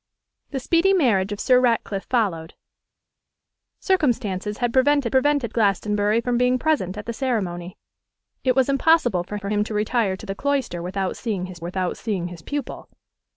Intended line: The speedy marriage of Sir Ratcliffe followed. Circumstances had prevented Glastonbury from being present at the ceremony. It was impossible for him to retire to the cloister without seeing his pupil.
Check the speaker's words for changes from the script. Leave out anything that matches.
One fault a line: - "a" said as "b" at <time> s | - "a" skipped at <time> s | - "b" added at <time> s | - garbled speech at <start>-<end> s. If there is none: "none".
- "prevented" added at 5.1 s
- "for" added at 9.3 s
- "without seeing his" added at 11.6 s